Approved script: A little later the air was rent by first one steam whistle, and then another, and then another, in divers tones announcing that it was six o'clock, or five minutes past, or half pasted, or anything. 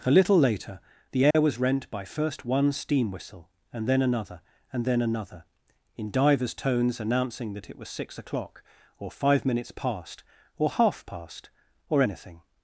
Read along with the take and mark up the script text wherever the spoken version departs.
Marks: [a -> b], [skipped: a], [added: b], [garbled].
A little later the air was rent by first one steam whistle, and then another, and then another, in divers tones announcing that it was six o'clock, or five minutes past, or half [pasted, -> past] or anything.